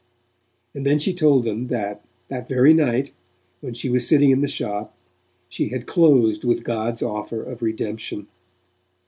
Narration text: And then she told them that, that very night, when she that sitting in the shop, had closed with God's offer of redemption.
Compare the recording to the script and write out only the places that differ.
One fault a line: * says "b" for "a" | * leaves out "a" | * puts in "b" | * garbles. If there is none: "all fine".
* says "was" for "that"
* puts in "she"